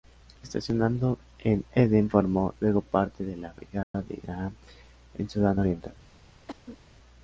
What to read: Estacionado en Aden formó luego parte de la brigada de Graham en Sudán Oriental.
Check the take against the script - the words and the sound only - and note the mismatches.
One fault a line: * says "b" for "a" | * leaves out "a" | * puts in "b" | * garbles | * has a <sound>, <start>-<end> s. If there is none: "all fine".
* has a dropout, 3.8-3.9 s
* has a cough, 6.5-6.8 s